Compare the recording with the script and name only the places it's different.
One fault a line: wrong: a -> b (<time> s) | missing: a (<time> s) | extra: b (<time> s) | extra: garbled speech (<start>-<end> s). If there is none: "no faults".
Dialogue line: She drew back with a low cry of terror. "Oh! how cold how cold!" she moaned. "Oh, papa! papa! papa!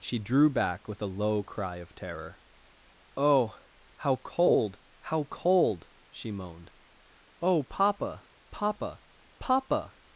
no faults